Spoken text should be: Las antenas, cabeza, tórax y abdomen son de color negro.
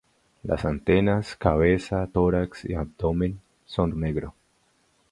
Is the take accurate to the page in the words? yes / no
no